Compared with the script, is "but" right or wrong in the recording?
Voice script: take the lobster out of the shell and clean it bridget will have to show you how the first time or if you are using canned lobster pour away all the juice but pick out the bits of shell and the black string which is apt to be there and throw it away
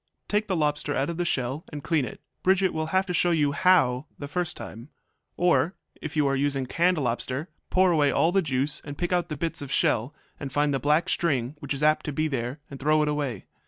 wrong